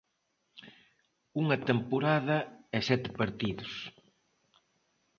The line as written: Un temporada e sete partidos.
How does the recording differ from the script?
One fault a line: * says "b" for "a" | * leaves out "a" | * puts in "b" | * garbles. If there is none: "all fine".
* says "Unha" for "Un"